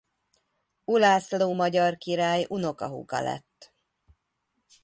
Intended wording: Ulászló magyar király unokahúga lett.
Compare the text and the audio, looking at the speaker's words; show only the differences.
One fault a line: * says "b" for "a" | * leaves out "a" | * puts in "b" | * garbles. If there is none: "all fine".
all fine